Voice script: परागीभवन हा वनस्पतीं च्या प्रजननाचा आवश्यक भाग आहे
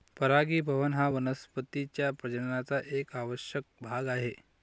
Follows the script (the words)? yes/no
no